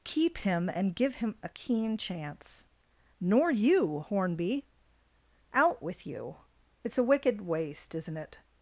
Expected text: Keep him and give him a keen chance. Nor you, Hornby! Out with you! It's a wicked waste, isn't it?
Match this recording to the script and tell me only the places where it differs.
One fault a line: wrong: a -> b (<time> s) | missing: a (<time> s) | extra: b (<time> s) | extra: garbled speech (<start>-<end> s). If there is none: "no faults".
no faults